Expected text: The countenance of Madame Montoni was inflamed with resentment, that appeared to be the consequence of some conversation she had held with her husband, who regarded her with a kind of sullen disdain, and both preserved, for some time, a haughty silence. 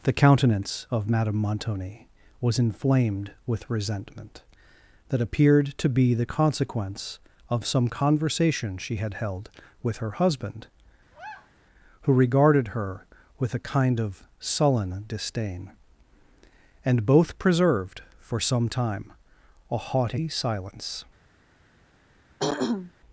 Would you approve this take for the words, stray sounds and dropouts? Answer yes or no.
no